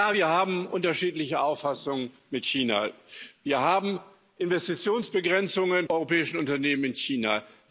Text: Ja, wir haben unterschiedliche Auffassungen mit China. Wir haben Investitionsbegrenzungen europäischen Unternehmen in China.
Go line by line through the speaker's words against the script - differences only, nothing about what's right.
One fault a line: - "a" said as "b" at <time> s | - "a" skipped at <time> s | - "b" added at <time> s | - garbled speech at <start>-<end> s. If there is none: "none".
none